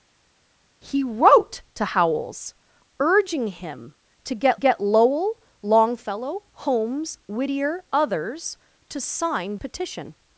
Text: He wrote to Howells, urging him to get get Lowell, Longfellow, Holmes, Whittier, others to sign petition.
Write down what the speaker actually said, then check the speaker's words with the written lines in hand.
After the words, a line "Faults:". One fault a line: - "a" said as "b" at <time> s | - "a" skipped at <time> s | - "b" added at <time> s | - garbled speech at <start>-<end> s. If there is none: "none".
He wrote to Howells, urging him to get get Lowell, Longfellow, Holmes, Whittier, others to sign petition.
Faults:
none